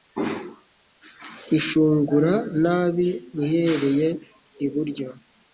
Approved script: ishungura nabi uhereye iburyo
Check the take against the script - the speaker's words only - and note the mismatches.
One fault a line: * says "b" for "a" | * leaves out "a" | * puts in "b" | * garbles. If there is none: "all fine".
all fine